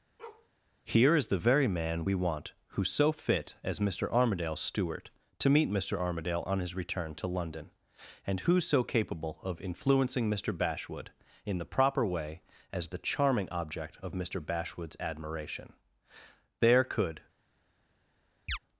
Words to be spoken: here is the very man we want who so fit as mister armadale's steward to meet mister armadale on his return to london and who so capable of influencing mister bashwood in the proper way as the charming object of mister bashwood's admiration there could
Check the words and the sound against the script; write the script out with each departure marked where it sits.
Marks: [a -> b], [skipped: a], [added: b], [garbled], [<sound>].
[bark] here is the very man we want who so fit as mister armadale's steward to meet mister armadale on his return to london and who so capable of influencing mister bashwood in the proper way as the charming object of mister bashwood's admiration there could [chirp]